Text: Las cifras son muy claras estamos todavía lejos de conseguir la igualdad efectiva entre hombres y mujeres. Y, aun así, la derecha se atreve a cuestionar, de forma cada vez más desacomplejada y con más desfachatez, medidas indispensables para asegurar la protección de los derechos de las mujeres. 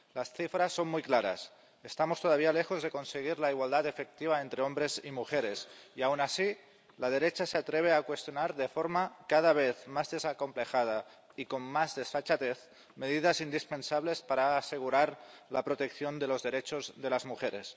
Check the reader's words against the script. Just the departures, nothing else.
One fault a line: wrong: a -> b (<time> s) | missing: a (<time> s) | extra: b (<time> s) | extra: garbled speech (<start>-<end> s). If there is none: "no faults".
no faults